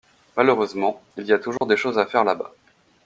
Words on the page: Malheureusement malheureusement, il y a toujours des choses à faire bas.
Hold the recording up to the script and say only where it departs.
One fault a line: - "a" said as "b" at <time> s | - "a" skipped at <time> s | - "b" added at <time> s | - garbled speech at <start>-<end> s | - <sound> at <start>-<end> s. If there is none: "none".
- "malheureusement" skipped at 1.0 s
- dropout at 1.6-1.6 s
- "là" added at 2.2 s